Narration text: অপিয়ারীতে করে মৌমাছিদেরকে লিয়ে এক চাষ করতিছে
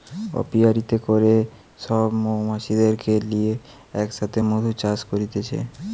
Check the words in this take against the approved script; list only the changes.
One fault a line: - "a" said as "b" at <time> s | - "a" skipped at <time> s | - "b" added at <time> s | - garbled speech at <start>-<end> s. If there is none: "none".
- "সব" added at 1.8 s
- "সাথে মধু" added at 4.2 s